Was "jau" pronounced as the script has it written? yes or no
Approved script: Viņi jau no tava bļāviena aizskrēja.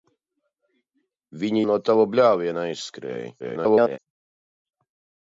no